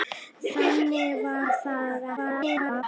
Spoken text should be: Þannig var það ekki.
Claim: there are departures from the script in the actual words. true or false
true